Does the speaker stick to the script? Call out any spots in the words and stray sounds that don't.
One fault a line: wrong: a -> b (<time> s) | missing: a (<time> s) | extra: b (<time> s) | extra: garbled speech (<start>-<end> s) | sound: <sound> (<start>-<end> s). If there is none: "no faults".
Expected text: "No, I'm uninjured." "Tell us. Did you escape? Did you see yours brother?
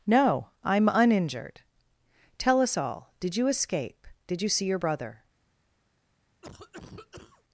extra: all (2.8 s)
wrong: yours -> your (4.7 s)
sound: cough (6.4-7.4 s)